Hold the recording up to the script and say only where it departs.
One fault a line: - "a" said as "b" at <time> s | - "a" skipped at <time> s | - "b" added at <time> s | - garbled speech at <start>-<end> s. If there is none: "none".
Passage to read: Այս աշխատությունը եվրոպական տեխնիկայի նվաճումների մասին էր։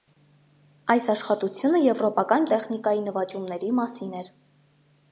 none